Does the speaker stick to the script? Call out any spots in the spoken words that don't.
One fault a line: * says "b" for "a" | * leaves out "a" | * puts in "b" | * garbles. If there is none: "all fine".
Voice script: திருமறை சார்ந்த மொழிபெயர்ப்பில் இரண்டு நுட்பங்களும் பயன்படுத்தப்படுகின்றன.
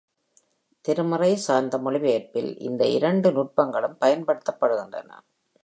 * puts in "இந்த"